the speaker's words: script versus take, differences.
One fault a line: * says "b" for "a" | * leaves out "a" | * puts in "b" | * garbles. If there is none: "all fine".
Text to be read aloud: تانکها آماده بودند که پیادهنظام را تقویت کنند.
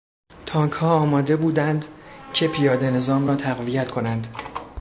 all fine